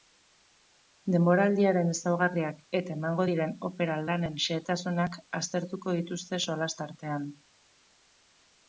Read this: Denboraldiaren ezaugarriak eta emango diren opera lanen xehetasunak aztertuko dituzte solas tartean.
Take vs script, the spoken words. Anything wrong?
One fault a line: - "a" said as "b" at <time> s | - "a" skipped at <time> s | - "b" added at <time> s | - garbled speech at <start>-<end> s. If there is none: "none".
none